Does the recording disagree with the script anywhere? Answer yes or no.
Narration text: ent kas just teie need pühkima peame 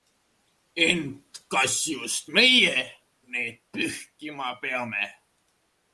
yes